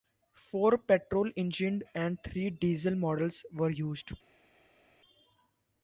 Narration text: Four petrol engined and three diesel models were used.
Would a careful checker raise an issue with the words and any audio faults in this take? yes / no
no